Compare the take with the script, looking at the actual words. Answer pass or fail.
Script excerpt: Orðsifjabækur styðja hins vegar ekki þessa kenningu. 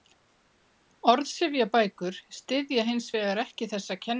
pass